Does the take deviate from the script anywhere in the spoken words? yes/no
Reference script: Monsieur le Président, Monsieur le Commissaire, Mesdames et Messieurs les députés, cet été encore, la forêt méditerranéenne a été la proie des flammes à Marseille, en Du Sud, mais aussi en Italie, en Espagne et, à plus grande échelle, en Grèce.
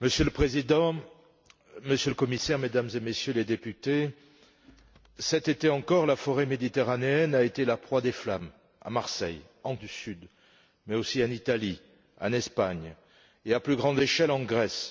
no